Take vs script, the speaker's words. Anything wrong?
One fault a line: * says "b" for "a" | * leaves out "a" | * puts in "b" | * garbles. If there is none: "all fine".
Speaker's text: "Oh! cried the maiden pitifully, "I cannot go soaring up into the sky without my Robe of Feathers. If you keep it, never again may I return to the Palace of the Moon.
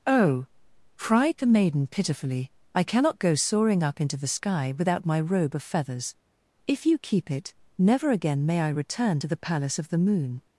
all fine